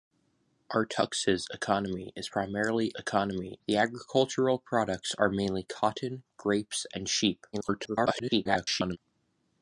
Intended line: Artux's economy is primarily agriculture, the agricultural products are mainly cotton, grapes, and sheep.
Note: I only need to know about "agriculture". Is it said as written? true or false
false